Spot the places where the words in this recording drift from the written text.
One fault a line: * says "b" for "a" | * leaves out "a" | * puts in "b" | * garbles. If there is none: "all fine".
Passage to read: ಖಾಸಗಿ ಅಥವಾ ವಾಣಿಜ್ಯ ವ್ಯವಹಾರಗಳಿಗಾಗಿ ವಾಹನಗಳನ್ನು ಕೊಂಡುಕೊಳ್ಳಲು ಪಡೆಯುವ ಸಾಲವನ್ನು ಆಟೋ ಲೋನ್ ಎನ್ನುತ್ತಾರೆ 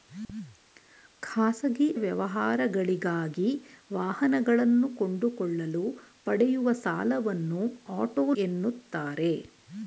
* leaves out "ಅಥವಾ ವಾಣಿಜ್ಯ"
* leaves out "ಲೋನ್"